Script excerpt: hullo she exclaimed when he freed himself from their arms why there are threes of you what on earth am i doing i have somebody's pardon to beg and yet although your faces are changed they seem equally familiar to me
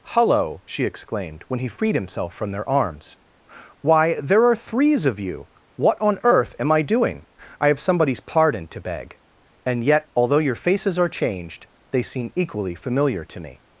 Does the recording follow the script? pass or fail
pass